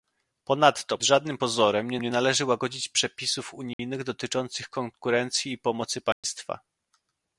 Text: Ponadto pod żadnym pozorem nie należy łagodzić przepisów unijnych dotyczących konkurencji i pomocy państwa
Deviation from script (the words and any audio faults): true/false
true